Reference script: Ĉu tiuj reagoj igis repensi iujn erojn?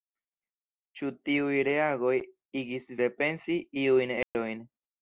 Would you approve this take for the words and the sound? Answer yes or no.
no